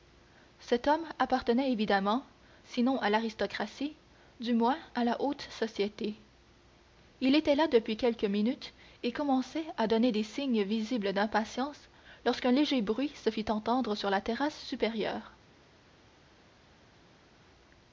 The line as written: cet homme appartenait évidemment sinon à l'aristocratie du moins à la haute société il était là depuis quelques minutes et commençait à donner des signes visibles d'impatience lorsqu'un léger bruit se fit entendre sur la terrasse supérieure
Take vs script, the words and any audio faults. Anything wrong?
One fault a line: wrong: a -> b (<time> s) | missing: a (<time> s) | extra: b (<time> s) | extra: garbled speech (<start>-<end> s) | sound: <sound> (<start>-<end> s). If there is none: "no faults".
no faults